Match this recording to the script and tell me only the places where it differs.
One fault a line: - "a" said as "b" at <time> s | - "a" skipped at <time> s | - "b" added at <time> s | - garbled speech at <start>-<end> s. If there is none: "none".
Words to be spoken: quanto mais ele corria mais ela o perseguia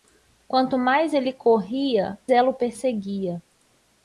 - "mais" skipped at 2.2 s